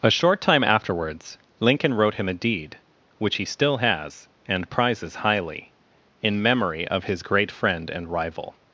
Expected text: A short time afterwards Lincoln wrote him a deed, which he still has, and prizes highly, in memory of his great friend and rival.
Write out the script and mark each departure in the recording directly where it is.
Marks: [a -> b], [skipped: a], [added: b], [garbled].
A short time afterwards Lincoln wrote him a deed, which he still has, and prizes highly, in memory of his great friend and rival.